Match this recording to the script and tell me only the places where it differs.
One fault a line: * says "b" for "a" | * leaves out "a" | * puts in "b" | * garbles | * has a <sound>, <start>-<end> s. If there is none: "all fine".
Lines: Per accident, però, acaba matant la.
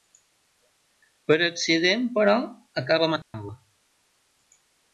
* has a dropout, 3.2-3.3 s